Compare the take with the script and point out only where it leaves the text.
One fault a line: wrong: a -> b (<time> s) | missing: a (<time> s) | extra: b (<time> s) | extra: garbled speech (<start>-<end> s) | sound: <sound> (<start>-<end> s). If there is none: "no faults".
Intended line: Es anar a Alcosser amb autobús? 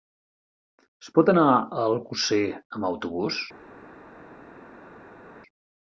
extra: pot (1.2 s)